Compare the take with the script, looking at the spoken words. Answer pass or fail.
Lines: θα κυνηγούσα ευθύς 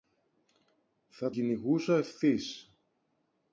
pass